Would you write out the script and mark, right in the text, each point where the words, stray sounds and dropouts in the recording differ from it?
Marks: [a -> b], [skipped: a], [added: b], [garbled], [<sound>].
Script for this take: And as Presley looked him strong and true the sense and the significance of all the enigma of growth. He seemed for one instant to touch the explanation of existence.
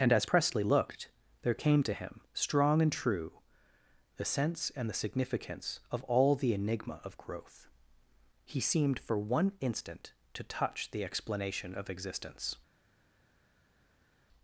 And as Presley looked [added: there came to] him strong and true the sense and the significance of all the enigma of growth. He seemed for one instant to touch the explanation of existence.